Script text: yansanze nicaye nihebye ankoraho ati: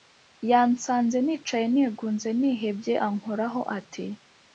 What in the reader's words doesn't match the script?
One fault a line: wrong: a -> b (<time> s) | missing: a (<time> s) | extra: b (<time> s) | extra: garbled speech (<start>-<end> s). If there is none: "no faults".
extra: nigunze (1.7 s)